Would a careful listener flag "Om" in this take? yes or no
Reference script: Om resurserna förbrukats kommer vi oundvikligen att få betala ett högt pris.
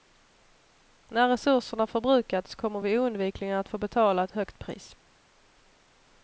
yes